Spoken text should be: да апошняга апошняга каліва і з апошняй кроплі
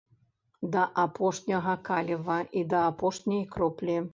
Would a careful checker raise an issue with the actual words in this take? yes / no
yes